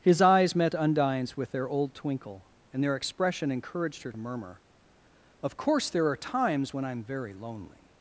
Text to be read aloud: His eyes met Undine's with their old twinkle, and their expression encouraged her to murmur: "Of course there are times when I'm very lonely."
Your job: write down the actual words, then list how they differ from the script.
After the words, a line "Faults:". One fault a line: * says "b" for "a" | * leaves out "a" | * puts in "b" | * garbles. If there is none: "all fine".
His eyes met Undine's with their old twinkle, and their expression encouraged her murmur: "Of course there are times when I'm very lonely."
Faults:
* leaves out "to"